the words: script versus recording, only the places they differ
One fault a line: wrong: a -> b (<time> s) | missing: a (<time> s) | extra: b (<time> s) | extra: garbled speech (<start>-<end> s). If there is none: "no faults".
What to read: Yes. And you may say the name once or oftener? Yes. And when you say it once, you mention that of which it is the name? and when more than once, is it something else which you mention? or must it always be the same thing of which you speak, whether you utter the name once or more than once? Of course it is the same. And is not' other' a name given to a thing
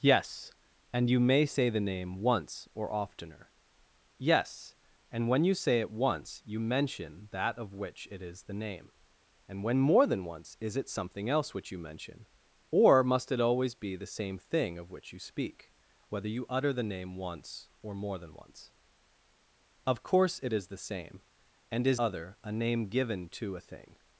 missing: not (22.0 s)